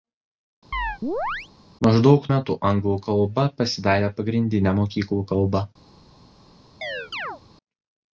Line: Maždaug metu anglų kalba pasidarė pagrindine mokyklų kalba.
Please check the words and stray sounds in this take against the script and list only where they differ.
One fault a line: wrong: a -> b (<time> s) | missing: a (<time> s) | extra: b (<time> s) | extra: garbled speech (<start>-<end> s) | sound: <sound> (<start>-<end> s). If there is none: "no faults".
sound: chirp (0.7-1.5 s)
sound: chirp (6.8-7.4 s)